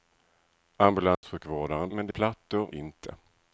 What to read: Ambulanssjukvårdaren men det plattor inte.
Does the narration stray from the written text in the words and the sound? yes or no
yes